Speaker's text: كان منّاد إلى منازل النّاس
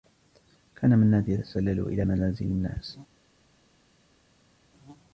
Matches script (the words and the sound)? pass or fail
fail